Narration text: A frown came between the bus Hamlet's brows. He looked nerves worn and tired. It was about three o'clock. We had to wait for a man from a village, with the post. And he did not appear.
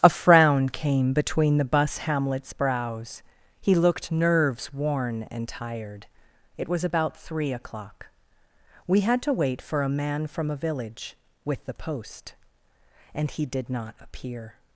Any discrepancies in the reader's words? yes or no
no